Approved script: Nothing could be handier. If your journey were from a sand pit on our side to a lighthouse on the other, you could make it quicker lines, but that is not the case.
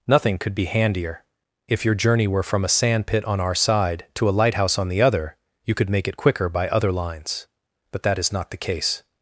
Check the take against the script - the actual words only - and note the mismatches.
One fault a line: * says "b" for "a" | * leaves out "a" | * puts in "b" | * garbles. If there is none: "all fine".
* puts in "by other"